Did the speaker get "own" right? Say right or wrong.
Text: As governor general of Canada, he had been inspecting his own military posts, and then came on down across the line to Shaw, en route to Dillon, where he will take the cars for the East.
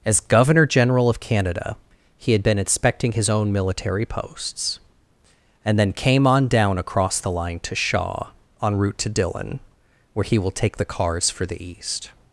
right